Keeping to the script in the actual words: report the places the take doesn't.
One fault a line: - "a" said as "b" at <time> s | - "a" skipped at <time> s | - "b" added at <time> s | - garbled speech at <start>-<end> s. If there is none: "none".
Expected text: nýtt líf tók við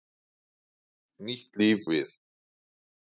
- "tók" skipped at 1.9 s